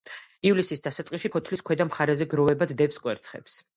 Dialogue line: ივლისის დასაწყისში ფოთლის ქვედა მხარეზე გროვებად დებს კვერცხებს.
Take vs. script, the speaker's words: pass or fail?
pass